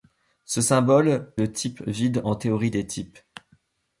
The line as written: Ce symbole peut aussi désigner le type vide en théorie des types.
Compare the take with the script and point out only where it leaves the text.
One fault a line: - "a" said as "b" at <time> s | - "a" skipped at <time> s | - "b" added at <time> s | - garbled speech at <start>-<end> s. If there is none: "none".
- "peut aussi désigner" skipped at 1.3 s